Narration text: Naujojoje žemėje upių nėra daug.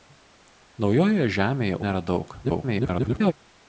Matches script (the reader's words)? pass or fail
fail